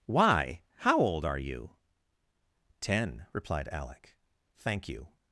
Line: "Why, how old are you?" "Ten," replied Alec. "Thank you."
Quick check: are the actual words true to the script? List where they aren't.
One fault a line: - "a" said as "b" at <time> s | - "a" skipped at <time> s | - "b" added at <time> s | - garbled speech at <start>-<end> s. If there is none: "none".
none